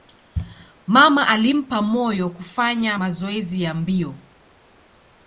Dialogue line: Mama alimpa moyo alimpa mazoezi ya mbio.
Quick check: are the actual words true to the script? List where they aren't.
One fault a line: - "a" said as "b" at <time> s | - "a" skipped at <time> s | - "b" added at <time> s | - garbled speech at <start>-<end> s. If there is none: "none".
- "alimpa" said as "kufanya" at 2.3 s